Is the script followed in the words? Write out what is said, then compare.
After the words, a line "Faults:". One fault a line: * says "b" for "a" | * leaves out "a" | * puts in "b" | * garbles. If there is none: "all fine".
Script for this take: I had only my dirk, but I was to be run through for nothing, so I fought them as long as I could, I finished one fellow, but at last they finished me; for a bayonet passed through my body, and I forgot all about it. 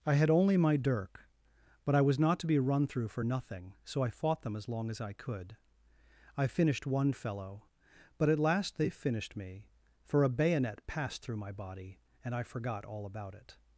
I had only my dirk, but I was not to be run through for nothing, so I fought them as long as I could, I finished one fellow, but at last they finished me; for a bayonet passed through my body, and I forgot all about it.
Faults:
* puts in "not"